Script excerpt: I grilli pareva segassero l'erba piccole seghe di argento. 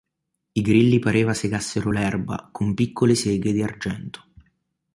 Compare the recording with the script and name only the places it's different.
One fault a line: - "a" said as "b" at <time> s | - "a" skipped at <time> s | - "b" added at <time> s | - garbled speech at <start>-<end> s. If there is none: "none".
- "con" added at 2.5 s